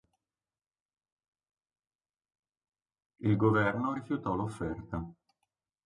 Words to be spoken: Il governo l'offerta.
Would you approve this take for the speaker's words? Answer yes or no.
no